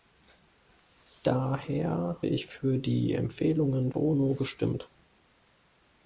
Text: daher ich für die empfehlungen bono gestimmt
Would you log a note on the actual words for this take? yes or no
no